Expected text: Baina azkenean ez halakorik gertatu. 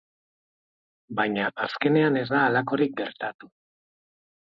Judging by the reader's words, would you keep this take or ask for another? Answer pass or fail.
fail